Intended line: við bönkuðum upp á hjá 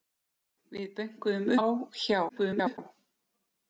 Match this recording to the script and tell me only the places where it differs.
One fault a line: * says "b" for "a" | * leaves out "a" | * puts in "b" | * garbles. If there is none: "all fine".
* leaves out "upp"
* garbles